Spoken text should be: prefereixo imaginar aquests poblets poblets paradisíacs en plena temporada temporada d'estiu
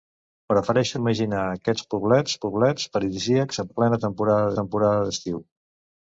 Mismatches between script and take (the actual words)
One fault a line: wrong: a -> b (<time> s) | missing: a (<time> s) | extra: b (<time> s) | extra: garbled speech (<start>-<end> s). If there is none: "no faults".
no faults